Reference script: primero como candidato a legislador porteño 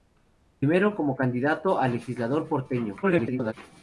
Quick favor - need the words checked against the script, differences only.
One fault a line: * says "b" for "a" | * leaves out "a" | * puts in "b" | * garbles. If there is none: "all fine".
* garbles